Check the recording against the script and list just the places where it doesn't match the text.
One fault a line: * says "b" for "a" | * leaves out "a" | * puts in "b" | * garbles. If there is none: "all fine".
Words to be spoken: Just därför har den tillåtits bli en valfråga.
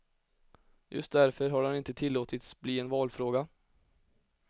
* puts in "inte"